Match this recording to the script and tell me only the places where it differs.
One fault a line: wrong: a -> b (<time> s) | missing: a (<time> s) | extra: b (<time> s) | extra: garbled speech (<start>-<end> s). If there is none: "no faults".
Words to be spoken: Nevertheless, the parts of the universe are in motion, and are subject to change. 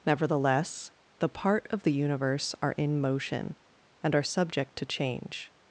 wrong: parts -> part (1.3 s)